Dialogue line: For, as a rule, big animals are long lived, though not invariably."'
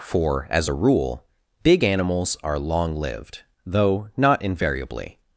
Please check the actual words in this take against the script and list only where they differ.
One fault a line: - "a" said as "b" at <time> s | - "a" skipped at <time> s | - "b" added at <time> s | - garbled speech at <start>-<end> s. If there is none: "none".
none